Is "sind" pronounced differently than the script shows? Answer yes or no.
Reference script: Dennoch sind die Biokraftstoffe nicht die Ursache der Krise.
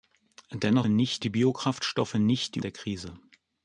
yes